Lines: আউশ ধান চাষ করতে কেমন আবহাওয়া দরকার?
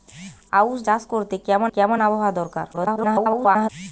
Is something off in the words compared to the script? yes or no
yes